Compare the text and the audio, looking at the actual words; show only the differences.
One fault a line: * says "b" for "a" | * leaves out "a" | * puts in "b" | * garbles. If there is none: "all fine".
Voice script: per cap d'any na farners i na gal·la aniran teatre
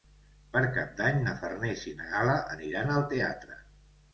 * puts in "al"